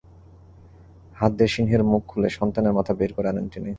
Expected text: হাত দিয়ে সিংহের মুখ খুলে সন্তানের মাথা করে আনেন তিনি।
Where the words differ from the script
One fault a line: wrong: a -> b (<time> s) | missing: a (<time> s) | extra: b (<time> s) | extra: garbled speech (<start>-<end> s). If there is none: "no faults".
extra: বের (2.9 s)